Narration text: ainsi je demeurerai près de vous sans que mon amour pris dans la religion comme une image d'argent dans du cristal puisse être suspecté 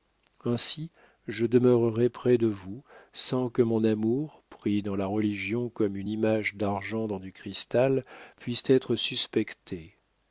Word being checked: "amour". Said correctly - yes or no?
yes